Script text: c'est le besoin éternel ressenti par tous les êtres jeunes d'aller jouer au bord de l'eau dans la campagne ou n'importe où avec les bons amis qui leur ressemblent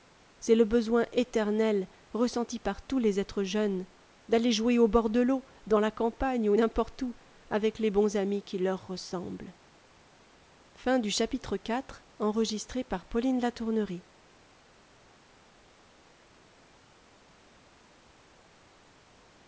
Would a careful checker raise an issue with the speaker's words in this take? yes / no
no